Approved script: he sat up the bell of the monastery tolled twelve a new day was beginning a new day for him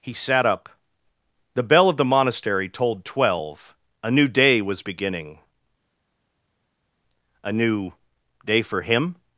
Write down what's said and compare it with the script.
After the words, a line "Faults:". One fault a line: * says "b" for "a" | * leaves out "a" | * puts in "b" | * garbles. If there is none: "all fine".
he sat up the bell of the monastery tolled twelve a new day was beginning a new day for him
Faults:
all fine